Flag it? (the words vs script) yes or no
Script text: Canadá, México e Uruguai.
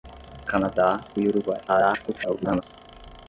yes